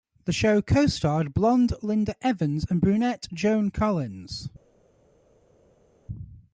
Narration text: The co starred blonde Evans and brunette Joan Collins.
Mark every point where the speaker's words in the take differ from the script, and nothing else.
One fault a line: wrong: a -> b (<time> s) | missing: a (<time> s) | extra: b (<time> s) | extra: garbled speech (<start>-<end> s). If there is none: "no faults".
extra: show (0.3 s)
extra: Linda (1.8 s)